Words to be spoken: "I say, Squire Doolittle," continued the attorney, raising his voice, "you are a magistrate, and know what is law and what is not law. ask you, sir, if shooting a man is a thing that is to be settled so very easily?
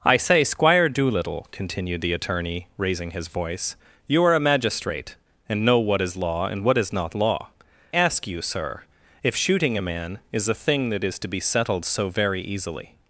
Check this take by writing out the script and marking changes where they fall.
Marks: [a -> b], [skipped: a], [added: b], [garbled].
"I say, Squire Doolittle," continued the attorney, raising his voice, "you are a magistrate, and know what is law and what is not law. ask you, sir, if shooting a man is a thing that is to be settled so very easily?